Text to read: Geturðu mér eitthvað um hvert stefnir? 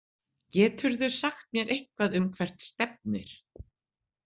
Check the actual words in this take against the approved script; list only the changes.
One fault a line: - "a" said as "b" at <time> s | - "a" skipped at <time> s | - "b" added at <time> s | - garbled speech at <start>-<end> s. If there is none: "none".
- "sagt" added at 1.2 s